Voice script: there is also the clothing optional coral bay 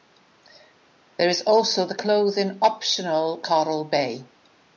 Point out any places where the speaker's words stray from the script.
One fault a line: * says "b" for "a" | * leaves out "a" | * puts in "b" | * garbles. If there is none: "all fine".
all fine